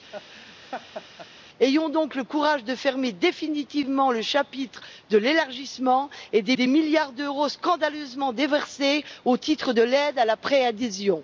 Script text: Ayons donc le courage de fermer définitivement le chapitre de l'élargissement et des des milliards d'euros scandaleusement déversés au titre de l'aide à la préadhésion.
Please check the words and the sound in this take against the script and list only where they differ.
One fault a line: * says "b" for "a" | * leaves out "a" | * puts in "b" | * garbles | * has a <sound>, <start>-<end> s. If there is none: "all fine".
* has a laugh, 0.1-1.3 s